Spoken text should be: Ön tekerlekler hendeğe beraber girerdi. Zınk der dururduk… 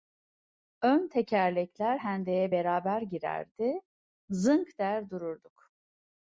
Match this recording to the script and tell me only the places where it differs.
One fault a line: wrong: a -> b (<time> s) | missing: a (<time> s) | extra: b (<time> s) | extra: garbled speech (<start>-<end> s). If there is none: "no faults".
no faults